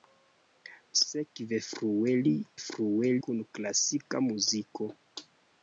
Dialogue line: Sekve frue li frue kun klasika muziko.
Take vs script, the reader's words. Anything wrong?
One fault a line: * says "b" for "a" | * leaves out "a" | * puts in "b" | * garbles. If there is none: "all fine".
all fine